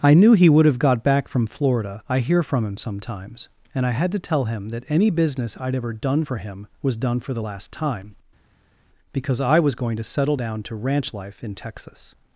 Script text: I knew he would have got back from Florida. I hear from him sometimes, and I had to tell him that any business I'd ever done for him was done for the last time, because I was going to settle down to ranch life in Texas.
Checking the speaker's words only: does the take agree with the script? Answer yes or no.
yes